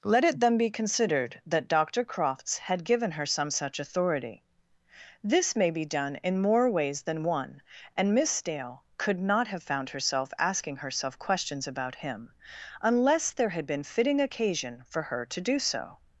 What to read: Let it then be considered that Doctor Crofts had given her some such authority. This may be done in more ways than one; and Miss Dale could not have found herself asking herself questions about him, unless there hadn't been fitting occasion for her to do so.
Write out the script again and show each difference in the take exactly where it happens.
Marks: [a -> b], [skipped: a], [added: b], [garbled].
Let it then be considered that Doctor Crofts had given her some such authority. This may be done in more ways than one; and Miss Dale could not have found herself asking herself questions about him, unless there [hadn't -> had] been fitting occasion for her to do so.